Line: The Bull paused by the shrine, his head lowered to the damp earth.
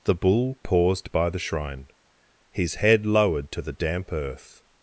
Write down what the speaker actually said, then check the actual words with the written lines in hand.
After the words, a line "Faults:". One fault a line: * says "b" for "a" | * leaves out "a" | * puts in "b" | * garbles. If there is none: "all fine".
The Bull paused by the shrine, his head lowered to the damp earth.
Faults:
all fine